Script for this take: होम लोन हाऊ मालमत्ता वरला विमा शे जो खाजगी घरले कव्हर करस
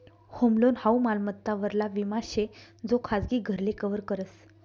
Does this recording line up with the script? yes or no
yes